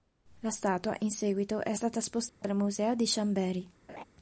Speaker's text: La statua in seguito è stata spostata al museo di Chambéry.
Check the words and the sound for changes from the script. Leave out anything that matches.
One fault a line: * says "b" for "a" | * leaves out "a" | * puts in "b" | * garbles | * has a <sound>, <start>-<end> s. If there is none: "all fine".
* has a dropout, 2.3-2.4 s
* has a laugh, 3.9-4.0 s